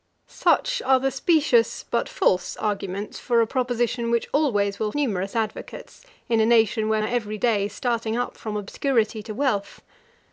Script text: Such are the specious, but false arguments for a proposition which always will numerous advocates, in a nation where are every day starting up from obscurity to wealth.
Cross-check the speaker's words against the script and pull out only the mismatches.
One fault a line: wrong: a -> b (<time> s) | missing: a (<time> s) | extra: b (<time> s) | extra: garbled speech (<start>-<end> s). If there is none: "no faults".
no faults